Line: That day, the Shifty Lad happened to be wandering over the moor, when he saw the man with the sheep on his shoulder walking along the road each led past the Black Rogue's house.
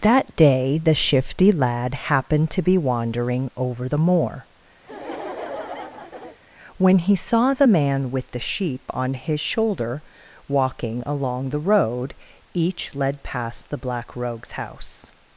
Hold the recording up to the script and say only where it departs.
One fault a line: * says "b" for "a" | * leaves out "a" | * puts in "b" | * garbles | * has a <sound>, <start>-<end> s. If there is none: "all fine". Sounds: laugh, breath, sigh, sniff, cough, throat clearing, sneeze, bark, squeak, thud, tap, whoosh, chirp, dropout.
* has a laugh, 4.8-6.4 s